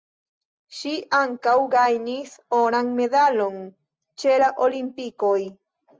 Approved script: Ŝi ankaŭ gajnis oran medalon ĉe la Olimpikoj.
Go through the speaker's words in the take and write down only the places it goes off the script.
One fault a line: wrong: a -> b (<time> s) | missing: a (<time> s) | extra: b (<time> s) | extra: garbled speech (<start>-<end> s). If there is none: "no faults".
no faults